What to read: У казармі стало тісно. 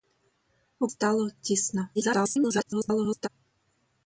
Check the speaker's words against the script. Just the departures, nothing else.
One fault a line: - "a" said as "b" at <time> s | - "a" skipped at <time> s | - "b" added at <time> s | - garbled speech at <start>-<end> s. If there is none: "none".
- "казармі" skipped at 0.9 s
- garbled speech at 1.9-3.3 s